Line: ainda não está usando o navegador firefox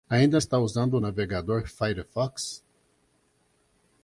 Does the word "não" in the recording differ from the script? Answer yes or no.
yes